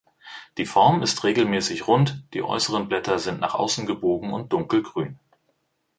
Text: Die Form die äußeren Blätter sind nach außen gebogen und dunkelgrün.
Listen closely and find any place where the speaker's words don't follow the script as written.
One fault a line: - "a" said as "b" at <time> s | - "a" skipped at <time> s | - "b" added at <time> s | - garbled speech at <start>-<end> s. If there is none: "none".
- "ist regelmäßig rund" added at 1.0 s